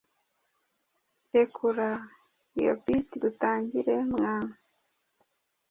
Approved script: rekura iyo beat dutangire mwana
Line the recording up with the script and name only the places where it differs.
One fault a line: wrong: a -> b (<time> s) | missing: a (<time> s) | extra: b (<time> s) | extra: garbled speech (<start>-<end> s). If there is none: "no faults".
no faults